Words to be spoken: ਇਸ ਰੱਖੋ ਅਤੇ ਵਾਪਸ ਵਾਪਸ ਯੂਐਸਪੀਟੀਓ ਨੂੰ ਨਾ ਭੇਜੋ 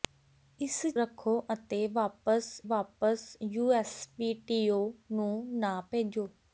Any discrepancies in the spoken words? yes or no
no